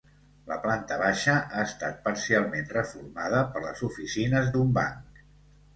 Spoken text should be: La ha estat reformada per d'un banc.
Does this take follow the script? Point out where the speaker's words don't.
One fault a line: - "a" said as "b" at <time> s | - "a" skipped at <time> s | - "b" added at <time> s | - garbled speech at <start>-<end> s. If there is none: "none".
- "planta baixa" added at 0.6 s
- "parcialment" added at 2.1 s
- "les oficines" added at 3.7 s